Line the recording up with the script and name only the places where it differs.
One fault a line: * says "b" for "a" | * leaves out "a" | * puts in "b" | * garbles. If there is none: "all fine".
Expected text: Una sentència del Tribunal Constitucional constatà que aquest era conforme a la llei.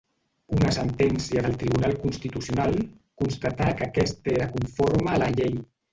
all fine